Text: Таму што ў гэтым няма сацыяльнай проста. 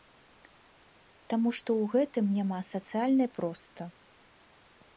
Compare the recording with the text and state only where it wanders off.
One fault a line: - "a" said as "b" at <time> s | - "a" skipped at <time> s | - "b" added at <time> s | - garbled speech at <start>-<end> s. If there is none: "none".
none